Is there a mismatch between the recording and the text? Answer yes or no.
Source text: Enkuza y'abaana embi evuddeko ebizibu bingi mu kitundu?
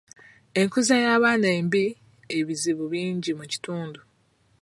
yes